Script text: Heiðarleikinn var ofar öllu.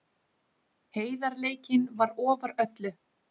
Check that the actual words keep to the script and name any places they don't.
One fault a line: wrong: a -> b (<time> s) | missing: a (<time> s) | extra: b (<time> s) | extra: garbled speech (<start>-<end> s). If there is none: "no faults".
no faults